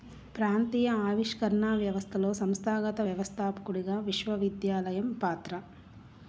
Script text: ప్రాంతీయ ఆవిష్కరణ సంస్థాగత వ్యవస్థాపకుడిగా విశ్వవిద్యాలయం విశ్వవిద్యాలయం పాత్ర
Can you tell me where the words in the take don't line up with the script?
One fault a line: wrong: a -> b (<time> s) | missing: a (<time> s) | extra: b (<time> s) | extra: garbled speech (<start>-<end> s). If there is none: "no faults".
extra: వ్యవస్థలో (1.8 s)
missing: విశ్వవిద్యాలయం (5.1 s)